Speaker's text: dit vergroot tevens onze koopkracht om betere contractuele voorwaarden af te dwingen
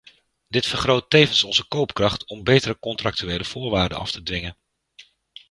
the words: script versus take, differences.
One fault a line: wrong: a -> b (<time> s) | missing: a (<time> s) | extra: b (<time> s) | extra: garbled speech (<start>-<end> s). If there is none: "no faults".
no faults